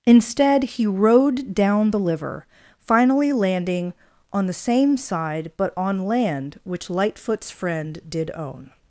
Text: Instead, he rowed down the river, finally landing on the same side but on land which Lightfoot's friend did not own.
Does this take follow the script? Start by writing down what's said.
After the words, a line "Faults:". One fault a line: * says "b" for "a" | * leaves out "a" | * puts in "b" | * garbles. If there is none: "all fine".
Instead, he rowed down the liver, finally landing on the same side but on land which Lightfoot's friend did own.
Faults:
* says "liver" for "river"
* leaves out "not"